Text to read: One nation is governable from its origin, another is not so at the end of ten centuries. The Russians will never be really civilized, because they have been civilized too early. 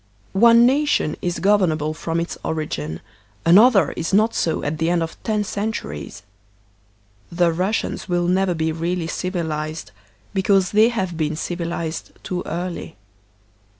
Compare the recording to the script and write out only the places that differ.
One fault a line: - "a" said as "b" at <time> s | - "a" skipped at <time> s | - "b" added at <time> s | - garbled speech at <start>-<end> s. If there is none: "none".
none